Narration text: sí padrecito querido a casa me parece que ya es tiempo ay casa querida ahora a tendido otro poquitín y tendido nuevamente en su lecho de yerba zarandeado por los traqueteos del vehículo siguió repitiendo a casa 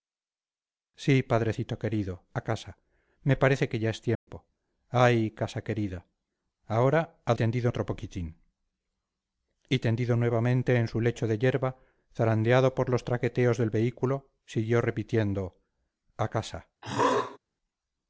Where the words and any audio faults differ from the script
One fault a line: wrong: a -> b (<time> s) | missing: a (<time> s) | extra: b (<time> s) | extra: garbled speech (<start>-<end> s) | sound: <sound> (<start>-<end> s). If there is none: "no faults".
sound: dropout (4.1-4.3 s)
sound: throat clearing (16.8-17.4 s)